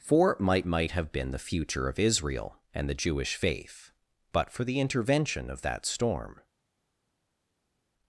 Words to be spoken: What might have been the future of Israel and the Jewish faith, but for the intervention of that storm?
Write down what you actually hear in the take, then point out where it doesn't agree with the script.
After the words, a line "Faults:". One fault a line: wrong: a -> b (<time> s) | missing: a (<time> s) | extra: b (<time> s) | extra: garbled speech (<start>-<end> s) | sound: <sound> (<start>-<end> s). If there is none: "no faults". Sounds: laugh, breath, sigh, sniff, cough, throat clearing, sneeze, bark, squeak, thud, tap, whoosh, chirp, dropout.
For might might have been the future of Israel and the Jewish faith, but for the intervention of that storm?
Faults:
wrong: What -> For might (0.0 s)